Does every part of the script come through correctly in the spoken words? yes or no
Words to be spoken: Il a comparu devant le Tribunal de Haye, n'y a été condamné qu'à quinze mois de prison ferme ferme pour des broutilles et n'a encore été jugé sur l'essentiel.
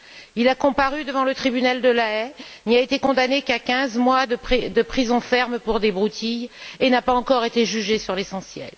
no